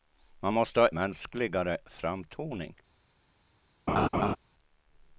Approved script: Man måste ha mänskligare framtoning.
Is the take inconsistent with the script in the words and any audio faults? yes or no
yes